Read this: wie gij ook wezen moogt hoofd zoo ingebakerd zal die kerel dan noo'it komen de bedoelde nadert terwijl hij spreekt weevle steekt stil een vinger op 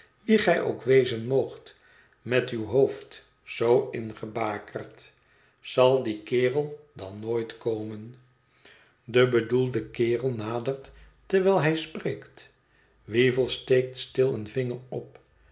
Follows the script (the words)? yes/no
no